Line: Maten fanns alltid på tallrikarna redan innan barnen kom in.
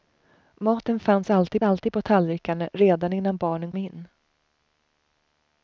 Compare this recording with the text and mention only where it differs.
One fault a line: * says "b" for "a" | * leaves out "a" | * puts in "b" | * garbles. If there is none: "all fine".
* puts in "alltid"
* leaves out "kom"